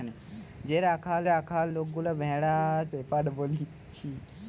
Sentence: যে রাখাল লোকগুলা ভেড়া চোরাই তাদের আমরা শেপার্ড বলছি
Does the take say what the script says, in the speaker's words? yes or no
no